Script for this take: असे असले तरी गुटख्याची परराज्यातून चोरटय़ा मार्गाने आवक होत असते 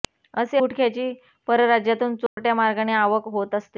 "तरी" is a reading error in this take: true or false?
true